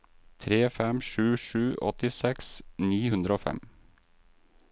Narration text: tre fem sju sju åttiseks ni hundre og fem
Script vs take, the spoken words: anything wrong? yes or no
no